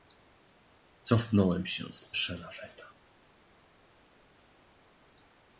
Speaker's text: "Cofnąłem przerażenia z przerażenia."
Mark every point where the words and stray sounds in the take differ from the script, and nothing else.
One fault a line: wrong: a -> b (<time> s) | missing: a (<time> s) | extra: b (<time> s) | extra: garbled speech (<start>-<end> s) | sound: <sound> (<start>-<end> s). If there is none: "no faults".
wrong: przerażenia -> się (1.7 s)